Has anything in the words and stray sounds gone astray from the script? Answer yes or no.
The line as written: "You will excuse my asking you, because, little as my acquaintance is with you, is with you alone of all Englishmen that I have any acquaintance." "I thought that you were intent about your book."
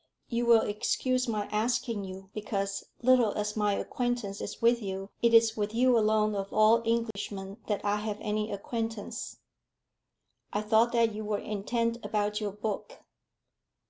yes